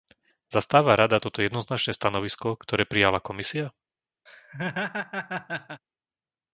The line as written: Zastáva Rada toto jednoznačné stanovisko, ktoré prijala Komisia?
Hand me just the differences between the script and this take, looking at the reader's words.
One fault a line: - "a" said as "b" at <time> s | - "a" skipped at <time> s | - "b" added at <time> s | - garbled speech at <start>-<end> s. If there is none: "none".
none